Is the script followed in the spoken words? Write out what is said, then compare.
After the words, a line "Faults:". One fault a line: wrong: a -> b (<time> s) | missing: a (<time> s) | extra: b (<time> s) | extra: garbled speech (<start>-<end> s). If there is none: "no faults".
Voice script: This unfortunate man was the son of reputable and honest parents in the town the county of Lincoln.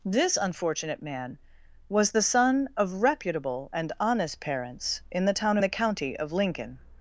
This unfortunate man was the son of reputable and honest parents in the town the county of Lincoln.
Faults:
no faults